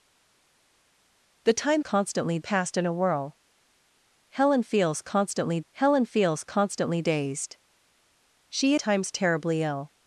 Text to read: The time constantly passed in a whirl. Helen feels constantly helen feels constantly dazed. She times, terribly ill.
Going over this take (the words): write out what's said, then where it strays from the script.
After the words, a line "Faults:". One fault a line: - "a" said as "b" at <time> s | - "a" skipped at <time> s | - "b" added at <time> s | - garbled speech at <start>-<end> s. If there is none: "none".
The time constantly passed in a whirl. Helen feels constantly helen feels constantly dazed. She times, terribly ill.
Faults:
none